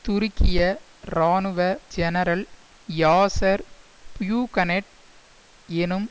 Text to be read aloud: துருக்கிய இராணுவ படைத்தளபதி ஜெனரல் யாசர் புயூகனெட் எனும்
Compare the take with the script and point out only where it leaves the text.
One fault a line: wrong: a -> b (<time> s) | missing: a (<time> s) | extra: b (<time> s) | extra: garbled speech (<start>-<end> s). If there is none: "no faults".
missing: படைத்தளபதி (1.6 s)